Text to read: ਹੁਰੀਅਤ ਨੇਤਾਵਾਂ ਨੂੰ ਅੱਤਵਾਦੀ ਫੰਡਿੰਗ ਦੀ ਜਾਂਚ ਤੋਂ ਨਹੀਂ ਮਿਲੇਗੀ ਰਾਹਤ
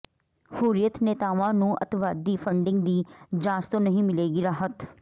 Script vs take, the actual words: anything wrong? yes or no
no